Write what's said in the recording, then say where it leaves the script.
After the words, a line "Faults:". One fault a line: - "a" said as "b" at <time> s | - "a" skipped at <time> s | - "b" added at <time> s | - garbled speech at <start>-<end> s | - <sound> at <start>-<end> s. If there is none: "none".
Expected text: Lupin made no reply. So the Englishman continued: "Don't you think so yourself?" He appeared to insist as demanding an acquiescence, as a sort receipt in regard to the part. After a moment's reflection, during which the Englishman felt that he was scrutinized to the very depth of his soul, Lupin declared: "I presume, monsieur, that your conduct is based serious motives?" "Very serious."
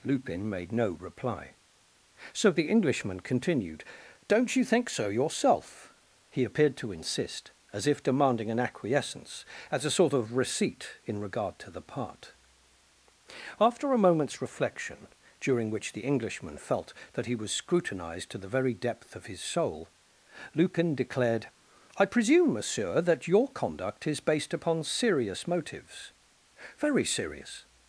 Lupin made no reply. So the Englishman continued: "Don't you think so yourself?" He appeared to insist as if demanding an acquiescence, as a sort of receipt in regard to the part. After a moment's reflection, during which the Englishman felt that he was scrutinized to the very depth of his soul, Lupin declared: "I presume, monsieur, that your conduct is based upon serious motives?" "Very serious."
Faults:
- "if" added at 7.9 s
- "of" added at 10.1 s
- "upon" added at 24.5 s